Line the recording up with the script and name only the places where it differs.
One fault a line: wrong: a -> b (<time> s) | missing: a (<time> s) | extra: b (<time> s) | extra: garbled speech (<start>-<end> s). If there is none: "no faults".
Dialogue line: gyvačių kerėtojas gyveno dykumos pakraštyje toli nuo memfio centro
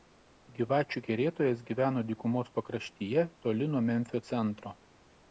no faults